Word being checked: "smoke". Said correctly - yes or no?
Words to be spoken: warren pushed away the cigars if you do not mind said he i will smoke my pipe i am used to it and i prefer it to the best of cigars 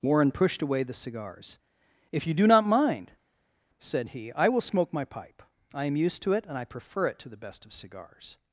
yes